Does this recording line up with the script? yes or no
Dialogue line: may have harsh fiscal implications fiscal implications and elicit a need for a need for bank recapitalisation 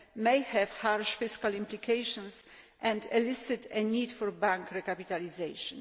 no